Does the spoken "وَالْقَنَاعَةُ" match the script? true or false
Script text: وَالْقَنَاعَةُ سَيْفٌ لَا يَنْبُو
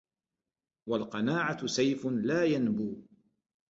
true